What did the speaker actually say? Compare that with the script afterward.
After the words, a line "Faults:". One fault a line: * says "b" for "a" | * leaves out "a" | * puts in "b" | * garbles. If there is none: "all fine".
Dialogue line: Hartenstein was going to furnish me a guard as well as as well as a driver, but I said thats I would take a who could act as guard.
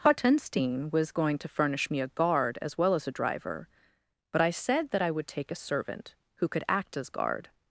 Hartenstein was going to furnish me a guard as well as a driver, but I said that I would take a servant, who could act as guard.
Faults:
* leaves out "as well as"
* says "that" for "thats"
* puts in "servant"